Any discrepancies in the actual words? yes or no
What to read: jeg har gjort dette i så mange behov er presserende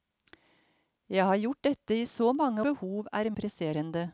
no